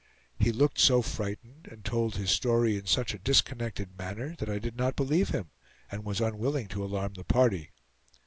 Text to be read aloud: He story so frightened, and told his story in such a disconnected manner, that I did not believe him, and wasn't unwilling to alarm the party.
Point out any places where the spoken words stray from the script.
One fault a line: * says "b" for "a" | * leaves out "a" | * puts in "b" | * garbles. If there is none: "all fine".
* says "looked" for "story"
* says "was" for "wasn't"